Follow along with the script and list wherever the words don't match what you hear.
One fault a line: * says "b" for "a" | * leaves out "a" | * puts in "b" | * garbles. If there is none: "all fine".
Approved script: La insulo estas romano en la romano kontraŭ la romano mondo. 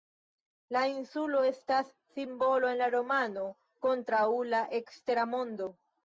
* says "simbolo" for "romano"
* says "ekstera" for "romano"